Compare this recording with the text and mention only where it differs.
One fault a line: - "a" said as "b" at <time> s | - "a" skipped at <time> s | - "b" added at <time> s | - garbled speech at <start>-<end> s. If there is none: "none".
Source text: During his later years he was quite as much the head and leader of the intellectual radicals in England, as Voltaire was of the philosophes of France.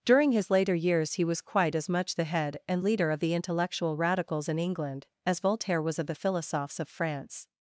none